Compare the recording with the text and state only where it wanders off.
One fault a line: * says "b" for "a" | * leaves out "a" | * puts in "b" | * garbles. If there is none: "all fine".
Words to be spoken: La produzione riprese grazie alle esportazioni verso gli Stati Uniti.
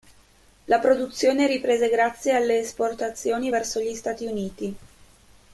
all fine